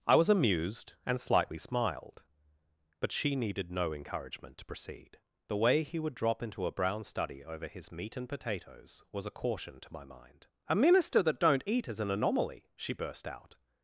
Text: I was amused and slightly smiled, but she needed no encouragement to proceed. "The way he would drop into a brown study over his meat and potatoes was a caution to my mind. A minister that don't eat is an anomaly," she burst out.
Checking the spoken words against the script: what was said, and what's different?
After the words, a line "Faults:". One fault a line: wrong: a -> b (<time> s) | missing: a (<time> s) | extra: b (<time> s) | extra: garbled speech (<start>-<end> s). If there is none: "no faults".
I was amused and slightly smiled, but she needed no encouragement to proceed. "The way he would drop into a brown study over his meat and potatoes was a caution to my mind. A minister that don't eat is an anomaly," she burst out.
Faults:
no faults